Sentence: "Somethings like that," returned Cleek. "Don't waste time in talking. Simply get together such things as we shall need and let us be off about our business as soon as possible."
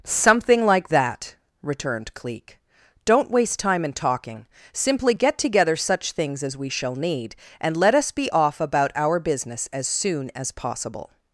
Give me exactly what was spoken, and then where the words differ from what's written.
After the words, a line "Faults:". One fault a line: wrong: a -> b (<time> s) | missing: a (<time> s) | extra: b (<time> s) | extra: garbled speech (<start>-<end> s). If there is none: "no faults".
"Something like that," returned Cleek. "Don't waste time in talking. Simply get together such things as we shall need and let us be off about our business as soon as possible."
Faults:
wrong: Somethings -> Something (0.0 s)